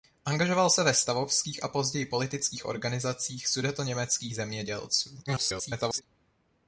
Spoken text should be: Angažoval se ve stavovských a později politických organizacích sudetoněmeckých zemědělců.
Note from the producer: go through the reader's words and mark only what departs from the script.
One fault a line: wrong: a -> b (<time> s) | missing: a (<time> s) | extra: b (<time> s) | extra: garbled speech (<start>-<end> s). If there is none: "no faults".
extra: garbled speech (5.3-6.0 s)